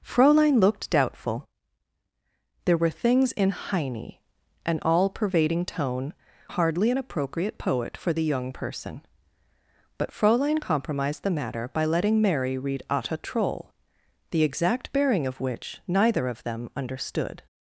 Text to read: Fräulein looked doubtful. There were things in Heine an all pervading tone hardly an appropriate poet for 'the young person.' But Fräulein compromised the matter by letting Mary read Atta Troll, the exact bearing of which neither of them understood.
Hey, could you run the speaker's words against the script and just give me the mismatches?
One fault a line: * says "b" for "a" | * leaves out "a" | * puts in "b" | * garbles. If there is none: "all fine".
all fine